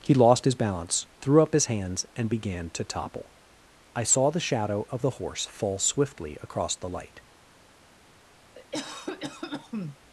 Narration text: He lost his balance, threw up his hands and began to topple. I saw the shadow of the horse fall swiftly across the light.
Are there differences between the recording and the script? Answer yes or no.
no